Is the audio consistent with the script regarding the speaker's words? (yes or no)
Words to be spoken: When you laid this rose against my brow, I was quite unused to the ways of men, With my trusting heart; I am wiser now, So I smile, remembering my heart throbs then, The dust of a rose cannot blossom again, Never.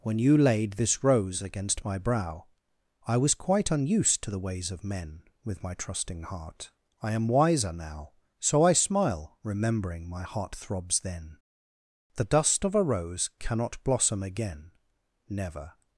yes